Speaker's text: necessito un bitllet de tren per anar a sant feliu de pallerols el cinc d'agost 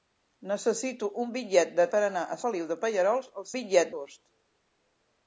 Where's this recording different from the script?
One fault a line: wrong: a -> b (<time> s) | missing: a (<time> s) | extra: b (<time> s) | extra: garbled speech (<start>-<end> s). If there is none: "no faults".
missing: tren (1.9 s)
missing: sant (2.4 s)
wrong: cinc -> bitllet (3.5 s)